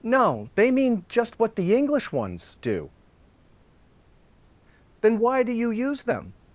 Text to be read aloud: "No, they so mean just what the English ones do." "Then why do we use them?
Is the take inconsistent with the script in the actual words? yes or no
yes